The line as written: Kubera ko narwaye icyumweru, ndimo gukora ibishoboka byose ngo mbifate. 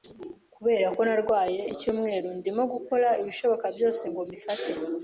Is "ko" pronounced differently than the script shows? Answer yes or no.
no